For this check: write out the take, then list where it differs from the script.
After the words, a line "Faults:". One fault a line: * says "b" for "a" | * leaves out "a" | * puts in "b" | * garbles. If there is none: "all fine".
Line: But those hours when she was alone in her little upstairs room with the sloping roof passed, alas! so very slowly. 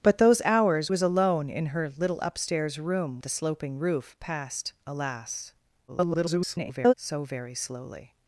But those hours was alone in her little upstairs room the sloping roof passed, alas! [garbled] so very slowly.
Faults:
* leaves out "when she"
* leaves out "with"
* garbles